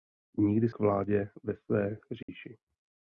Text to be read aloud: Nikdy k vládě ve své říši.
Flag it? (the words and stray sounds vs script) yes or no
yes